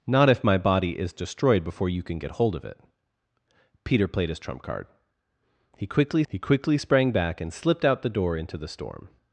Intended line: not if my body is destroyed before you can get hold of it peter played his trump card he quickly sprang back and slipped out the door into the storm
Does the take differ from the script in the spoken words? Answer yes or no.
yes